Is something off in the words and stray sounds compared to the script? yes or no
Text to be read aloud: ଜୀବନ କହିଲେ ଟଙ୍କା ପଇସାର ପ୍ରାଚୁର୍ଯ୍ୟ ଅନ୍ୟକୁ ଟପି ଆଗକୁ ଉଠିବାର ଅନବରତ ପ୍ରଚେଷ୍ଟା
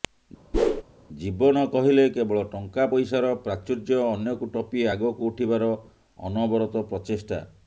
yes